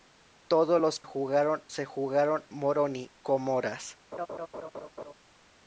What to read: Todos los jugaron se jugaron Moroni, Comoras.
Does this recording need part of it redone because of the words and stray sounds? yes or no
yes